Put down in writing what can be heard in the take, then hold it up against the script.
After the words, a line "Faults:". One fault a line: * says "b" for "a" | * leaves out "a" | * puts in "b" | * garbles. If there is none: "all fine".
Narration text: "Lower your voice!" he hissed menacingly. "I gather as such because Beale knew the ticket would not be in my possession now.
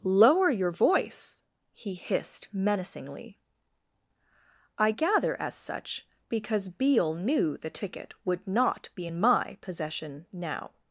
"Lower your voice!" he hissed menacingly. "I gather as such because Beale knew the ticket would not be in my possession now.
Faults:
all fine